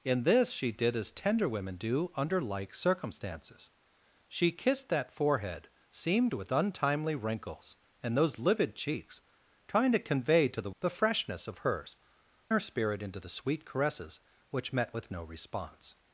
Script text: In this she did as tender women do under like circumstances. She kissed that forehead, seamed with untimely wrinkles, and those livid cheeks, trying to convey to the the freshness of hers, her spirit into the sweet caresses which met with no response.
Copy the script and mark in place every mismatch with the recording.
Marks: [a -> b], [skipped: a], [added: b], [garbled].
In this she did as tender women do under like circumstances. She kissed that forehead, seamed with untimely wrinkles, and those livid cheeks, trying to convey to the the freshness of hers, her spirit into the sweet caresses which met with no response.